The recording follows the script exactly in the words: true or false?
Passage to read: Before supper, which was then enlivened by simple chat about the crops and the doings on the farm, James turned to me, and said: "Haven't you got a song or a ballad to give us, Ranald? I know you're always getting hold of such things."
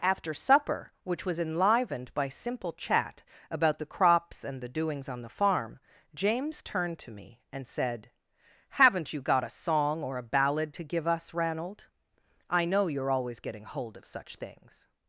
false